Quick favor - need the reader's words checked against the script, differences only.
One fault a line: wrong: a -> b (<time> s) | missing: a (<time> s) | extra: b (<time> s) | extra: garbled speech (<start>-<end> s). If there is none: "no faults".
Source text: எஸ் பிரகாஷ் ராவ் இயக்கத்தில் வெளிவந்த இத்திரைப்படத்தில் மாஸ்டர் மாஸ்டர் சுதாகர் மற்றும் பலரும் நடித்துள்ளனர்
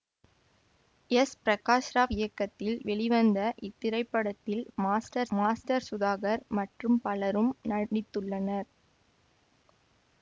no faults